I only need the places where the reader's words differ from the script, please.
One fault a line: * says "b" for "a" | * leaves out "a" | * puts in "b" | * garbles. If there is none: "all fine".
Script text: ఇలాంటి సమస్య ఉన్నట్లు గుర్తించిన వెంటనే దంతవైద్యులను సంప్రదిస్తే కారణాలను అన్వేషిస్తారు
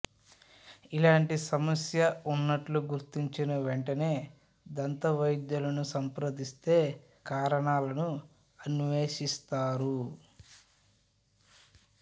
all fine